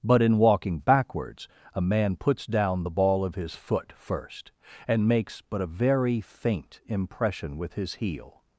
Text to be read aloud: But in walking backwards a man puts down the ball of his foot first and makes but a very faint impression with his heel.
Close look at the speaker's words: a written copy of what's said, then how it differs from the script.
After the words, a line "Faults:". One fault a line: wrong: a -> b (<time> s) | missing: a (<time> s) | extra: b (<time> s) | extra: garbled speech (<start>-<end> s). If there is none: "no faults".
But in walking backwards a man puts down the ball of his foot first and makes but a very faint impression with his heel.
Faults:
no faults